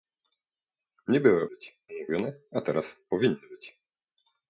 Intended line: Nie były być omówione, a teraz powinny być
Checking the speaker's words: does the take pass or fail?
pass